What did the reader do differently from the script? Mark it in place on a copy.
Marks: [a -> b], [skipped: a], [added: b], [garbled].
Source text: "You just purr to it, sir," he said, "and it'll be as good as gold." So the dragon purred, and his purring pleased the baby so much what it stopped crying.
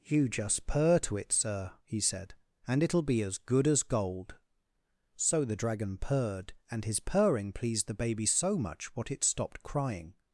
"You just purr to it, sir," he said, "and it'll be as good as gold." So the dragon purred, and his purring pleased the baby so much what it stopped crying.